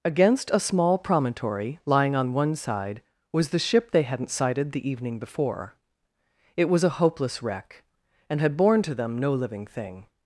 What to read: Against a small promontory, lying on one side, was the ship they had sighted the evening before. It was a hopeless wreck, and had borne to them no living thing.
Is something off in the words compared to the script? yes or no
yes